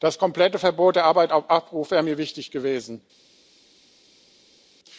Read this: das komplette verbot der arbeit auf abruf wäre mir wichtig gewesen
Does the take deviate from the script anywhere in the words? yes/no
no